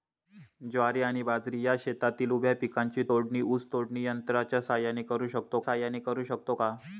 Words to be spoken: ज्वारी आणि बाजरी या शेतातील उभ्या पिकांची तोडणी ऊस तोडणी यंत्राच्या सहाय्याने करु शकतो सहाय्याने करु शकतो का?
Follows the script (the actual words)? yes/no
yes